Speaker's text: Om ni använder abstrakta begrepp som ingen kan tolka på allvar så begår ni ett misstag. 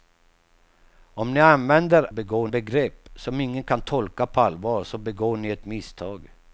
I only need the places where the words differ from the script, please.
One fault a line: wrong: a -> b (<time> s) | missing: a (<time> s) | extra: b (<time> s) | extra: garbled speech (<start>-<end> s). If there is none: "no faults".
wrong: abstrakta -> begår (2.1 s)